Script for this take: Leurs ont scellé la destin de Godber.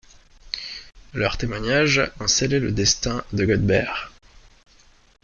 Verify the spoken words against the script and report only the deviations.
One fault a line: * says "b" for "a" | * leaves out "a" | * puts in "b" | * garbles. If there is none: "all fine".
* puts in "témoignages"
* says "le" for "la"